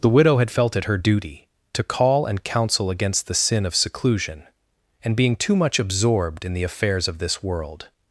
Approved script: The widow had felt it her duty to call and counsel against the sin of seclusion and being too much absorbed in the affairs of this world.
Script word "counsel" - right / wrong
right